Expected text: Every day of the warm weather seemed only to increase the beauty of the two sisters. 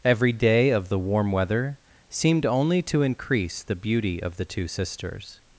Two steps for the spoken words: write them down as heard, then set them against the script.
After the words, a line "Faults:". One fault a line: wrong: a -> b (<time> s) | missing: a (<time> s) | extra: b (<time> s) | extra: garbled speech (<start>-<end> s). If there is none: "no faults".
Every day of the warm weather seemed only to increase the beauty of the two sisters.
Faults:
no faults